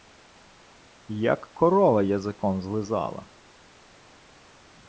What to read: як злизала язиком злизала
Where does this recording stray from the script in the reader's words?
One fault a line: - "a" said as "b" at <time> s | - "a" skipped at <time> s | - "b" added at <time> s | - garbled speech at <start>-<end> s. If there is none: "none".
- "злизала" said as "корова" at 1.5 s